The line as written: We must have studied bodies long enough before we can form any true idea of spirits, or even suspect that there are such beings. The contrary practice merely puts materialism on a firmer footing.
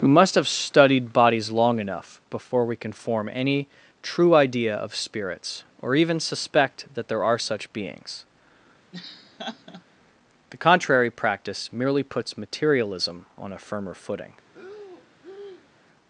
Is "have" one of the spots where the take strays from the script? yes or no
no